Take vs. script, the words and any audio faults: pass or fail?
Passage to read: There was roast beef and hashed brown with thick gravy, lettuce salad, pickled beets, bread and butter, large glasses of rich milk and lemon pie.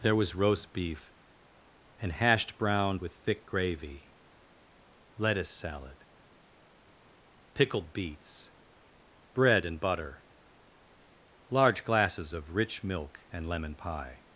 pass